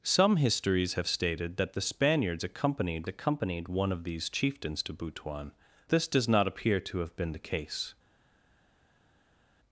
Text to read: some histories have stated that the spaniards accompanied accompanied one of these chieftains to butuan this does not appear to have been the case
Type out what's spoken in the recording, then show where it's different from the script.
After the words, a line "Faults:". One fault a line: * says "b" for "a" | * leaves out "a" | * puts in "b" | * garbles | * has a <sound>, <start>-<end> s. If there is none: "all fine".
some histories have stated that the spaniards accompanied accompanied one of these chieftains to butuan this does not appear to have been the case
Faults:
all fine